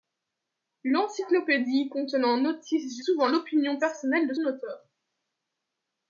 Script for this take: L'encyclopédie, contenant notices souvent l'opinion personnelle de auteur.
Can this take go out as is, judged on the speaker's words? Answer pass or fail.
pass